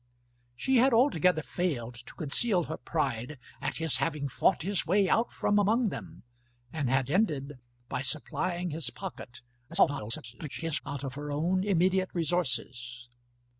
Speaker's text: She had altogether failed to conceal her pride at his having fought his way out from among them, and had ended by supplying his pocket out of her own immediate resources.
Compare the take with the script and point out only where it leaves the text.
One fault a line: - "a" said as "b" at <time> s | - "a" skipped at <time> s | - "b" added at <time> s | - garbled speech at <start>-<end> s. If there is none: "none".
- garbled speech at 9.7-10.8 s